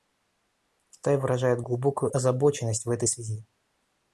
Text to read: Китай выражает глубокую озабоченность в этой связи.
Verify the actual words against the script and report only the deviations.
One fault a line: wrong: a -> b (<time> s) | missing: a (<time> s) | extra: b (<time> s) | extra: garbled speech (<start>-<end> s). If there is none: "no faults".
no faults